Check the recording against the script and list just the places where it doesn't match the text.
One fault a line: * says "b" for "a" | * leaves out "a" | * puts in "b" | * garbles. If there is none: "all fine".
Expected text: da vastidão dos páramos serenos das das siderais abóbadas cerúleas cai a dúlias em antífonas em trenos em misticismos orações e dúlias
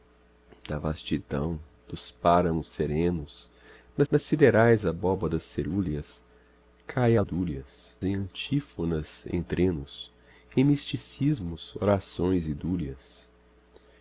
all fine